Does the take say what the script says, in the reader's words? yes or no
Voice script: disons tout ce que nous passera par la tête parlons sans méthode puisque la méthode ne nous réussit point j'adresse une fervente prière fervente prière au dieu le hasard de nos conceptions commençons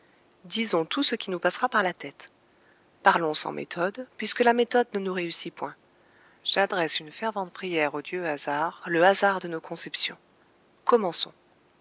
no